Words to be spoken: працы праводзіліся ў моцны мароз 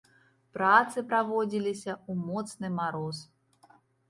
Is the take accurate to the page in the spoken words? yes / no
yes